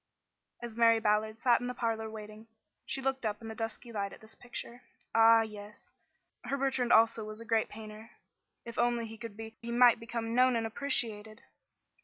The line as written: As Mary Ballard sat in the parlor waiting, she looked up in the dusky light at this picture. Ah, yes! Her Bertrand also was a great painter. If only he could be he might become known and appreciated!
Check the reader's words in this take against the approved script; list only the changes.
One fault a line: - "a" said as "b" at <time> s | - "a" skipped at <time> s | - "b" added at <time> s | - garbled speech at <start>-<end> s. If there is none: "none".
none